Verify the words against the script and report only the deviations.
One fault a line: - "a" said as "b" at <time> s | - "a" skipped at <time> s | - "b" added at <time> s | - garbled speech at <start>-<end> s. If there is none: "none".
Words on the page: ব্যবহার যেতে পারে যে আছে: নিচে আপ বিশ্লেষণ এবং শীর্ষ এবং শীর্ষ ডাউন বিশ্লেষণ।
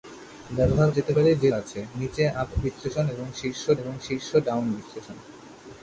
none